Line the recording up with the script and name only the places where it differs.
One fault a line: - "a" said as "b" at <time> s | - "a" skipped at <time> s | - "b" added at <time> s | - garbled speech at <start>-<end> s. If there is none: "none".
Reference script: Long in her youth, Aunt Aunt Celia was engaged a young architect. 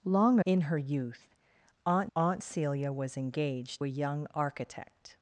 none